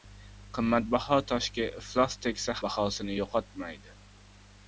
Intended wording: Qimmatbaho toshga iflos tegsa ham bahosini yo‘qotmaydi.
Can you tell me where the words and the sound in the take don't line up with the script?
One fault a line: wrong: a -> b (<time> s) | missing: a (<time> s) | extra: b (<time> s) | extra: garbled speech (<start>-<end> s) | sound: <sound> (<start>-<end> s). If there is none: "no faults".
missing: ham (2.6 s)